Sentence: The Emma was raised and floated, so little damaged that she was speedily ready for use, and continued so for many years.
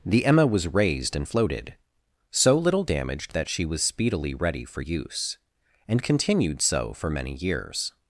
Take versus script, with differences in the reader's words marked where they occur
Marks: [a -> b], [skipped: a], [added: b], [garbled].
The Emma was raised and floated, so little damaged that she was speedily ready for use, and continued so for many years.